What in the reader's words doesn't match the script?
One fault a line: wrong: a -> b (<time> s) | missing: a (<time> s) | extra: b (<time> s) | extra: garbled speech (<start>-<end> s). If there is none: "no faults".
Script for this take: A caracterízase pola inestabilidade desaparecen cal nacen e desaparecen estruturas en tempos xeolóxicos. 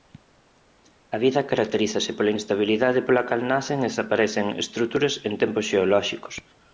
extra: vida (1.2 s)
wrong: desaparecen -> pola (3.1 s)